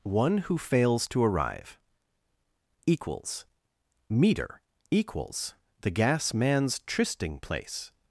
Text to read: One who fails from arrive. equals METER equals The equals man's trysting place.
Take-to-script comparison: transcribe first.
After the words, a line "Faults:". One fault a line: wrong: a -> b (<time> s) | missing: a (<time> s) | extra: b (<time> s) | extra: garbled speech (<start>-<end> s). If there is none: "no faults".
One who fails to arrive. equals METER equals The gas man's trysting place.
Faults:
wrong: from -> to (1.1 s)
wrong: equals -> gas (5.9 s)